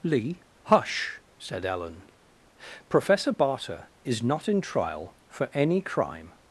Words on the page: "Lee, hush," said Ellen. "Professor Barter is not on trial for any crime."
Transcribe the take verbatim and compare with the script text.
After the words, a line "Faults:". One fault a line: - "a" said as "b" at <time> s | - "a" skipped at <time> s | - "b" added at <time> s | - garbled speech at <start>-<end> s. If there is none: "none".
"Lee, hush," said Ellen. "Professor Barter is not in trial for any crime."
Faults:
- "on" said as "in" at 4.5 s